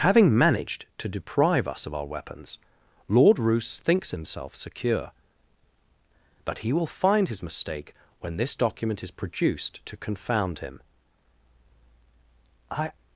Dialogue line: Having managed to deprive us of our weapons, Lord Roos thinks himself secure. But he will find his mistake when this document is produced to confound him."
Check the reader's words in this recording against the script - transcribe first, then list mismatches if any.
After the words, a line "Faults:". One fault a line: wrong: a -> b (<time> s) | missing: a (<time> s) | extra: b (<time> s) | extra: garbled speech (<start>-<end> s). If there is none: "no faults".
Having managed to deprive us of our weapons, Lord Roos thinks himself secure. But he will find his mistake when this document is produced to confound him." "I
Faults:
extra: I (12.7 s)